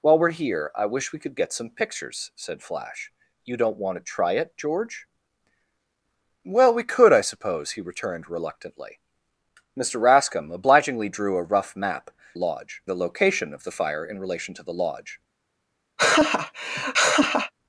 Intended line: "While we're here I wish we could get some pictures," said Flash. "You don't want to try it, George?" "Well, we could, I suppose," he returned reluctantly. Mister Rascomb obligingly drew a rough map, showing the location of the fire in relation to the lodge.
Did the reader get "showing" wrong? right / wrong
wrong